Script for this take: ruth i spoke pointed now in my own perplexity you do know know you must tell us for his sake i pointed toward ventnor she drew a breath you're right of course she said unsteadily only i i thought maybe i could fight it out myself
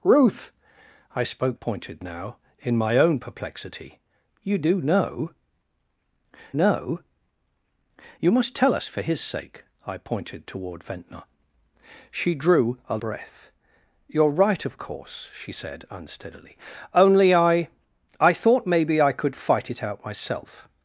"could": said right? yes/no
yes